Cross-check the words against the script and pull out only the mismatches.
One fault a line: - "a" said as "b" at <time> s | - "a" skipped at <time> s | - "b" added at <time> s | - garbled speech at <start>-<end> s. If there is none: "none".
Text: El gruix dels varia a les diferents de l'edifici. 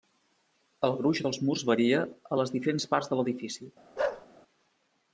- "murs" added at 1.5 s
- "parts" added at 3.0 s